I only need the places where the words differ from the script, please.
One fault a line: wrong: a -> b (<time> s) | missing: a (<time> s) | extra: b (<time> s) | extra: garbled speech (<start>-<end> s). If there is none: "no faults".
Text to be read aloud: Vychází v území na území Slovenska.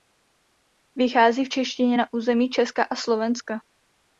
wrong: území -> češtině (1.5 s)
extra: Česka a (2.5 s)